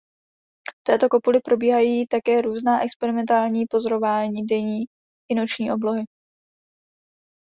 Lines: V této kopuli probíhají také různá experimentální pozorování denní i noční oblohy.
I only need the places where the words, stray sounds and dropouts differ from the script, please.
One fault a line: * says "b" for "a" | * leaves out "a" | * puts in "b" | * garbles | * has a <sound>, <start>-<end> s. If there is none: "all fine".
all fine